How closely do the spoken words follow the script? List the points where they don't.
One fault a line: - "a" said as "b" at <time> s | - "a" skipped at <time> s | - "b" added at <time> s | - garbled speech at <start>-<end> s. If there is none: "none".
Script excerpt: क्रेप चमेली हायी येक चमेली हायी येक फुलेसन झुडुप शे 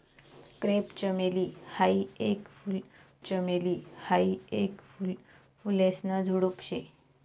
none